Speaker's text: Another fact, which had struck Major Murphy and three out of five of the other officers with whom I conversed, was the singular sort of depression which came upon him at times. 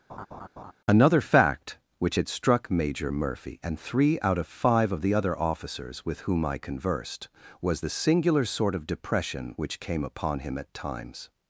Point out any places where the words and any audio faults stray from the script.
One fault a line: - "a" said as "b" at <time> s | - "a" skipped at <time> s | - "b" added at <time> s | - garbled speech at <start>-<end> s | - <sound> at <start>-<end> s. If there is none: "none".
- laugh at 0.1-0.7 s